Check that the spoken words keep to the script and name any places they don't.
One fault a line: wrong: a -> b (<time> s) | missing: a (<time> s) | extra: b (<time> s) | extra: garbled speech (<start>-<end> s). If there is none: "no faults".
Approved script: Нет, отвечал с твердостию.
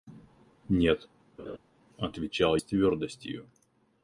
no faults